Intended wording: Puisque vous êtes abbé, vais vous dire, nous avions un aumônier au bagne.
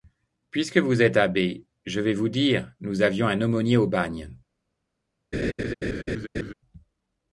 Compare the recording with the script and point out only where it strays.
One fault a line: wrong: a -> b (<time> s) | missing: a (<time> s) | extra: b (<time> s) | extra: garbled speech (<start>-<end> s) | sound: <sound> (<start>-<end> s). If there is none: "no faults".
extra: je (1.9 s)
sound: laugh (5.3-6.5 s)